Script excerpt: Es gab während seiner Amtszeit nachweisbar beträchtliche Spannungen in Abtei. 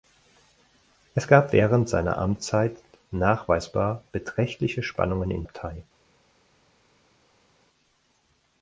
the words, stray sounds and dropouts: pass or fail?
pass